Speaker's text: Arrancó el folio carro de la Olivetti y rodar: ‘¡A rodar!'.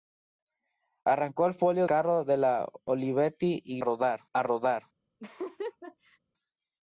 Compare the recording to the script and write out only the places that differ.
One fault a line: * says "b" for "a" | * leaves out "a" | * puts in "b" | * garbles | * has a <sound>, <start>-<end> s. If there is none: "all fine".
* has a laugh, 5.2-6.2 s